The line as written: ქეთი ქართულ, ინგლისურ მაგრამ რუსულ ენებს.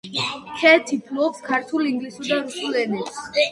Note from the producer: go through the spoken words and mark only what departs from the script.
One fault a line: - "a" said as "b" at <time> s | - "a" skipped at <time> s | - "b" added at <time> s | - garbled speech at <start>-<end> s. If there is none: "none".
- "ფლობს" added at 1.1 s
- "მაგრამ" said as "და" at 2.3 s